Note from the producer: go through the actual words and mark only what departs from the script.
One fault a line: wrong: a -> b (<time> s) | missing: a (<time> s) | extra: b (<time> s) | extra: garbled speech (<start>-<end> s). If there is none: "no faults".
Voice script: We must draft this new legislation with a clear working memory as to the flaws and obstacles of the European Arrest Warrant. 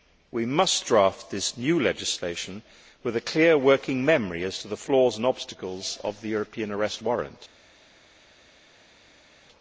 no faults